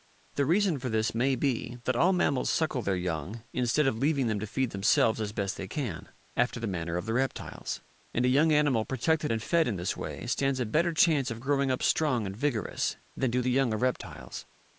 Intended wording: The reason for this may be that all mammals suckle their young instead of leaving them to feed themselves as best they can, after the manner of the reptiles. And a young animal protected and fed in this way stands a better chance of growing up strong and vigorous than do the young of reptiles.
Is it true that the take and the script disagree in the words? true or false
false